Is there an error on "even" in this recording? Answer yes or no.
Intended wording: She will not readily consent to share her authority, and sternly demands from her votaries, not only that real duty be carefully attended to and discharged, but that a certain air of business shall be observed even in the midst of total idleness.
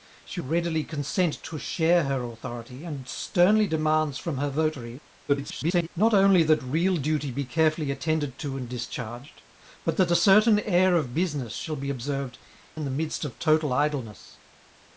yes